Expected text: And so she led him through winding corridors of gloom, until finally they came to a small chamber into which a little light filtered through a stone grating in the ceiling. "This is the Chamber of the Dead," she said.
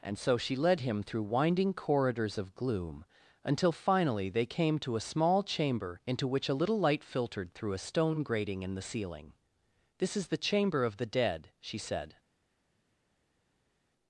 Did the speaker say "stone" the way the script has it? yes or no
yes